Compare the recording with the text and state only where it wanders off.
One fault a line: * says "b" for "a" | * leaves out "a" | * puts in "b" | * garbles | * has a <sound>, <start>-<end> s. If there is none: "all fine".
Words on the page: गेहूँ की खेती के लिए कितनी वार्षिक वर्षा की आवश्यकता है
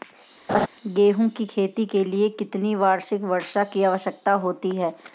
* has a laugh, 0.5-0.7 s
* puts in "होती"